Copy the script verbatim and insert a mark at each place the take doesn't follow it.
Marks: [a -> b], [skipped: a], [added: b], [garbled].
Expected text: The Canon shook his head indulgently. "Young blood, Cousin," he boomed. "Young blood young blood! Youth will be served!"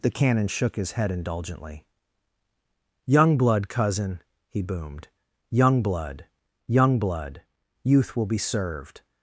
The Canon shook his head indulgently. "Young blood, Cousin," he boomed. "Young blood young blood! Youth will be served!"